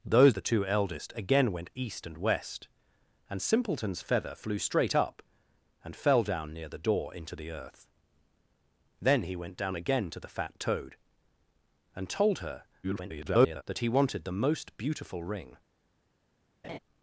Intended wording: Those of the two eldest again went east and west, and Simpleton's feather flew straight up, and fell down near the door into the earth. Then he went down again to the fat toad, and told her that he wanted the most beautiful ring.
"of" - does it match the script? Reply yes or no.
no